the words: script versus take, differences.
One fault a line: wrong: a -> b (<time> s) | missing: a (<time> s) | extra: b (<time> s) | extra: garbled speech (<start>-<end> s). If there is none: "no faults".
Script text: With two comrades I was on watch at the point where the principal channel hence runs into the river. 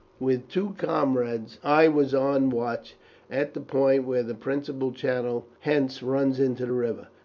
no faults